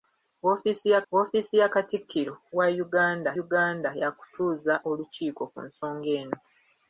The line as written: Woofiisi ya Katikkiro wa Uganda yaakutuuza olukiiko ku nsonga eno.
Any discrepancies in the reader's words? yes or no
yes